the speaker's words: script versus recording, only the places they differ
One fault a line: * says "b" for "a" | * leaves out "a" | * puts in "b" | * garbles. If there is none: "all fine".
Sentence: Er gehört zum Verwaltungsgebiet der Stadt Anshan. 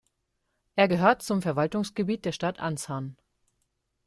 all fine